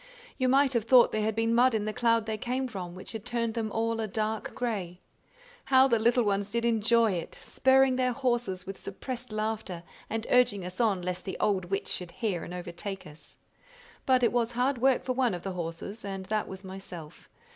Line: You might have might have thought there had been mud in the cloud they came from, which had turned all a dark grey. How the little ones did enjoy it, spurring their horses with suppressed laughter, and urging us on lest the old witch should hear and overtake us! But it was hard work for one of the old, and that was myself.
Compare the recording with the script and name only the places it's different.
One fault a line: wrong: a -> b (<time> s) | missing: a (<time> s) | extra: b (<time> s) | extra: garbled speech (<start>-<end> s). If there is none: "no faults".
missing: might have (0.8 s)
extra: them (3.5 s)
wrong: old -> horses (15.5 s)